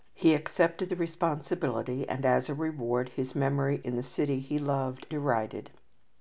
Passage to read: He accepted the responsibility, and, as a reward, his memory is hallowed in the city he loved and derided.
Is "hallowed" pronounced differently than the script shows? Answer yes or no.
yes